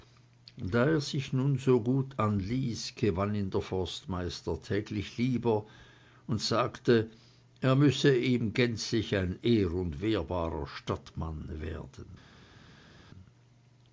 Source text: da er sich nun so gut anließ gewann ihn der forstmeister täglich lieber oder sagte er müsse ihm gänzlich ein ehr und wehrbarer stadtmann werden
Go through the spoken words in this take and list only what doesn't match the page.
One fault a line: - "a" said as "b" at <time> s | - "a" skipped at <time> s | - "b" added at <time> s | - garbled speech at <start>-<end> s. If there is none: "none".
- "oder" said as "und" at 6.2 s